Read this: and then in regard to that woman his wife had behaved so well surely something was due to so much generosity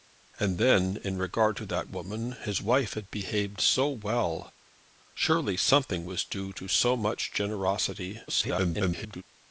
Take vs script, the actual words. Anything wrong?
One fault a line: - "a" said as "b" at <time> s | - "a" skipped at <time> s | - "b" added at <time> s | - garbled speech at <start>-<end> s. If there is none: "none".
- garbled speech at 8.3-9.2 s